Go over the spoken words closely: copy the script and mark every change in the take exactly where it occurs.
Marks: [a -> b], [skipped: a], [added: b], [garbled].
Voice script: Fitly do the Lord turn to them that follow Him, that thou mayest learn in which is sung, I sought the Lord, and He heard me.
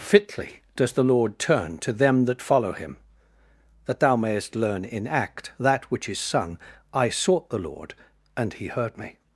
Fitly [do -> does] the Lord turn to them that follow Him, that thou mayest learn in [added: act that] which is sung, I sought the Lord, and He heard me.